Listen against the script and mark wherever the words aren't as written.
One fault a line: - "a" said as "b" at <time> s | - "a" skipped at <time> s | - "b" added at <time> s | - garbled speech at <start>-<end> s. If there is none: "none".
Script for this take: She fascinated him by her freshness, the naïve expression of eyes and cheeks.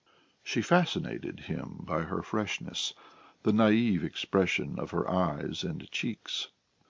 - "her" added at 4.9 s